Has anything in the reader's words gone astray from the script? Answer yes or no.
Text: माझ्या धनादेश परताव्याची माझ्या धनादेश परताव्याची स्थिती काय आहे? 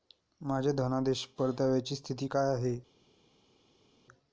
yes